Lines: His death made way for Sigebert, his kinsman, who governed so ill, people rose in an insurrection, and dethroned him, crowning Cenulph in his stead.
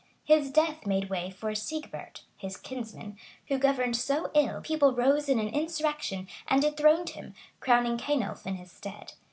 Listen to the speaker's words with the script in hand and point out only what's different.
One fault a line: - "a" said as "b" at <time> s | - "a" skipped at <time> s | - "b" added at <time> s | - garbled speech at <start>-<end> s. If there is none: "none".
none